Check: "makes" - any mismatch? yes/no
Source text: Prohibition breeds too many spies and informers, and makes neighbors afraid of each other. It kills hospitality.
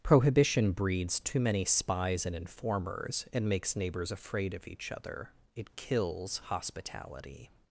no